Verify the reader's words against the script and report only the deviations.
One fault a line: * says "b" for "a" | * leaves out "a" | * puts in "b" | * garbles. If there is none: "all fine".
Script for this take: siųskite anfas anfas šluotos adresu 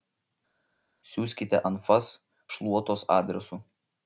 * leaves out "anfas"